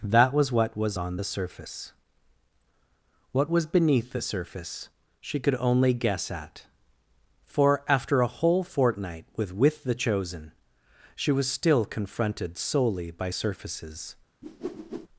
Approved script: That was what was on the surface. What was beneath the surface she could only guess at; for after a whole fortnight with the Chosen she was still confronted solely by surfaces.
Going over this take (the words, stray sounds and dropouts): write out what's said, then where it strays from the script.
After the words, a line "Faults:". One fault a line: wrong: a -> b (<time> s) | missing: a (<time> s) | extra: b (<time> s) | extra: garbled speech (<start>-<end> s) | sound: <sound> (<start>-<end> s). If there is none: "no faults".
That was what was on the surface. What was beneath the surface she could only guess at; for after a whole fortnight with with the Chosen she was still confronted solely by surfaces.
Faults:
extra: with (9.5 s)
sound: whoosh (14.4-15.1 s)